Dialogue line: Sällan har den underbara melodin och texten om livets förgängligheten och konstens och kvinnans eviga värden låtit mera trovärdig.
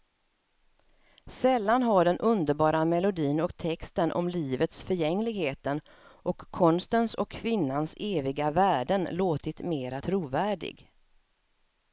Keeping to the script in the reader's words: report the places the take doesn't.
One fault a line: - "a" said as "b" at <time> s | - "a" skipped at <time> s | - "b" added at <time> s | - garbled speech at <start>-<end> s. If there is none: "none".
none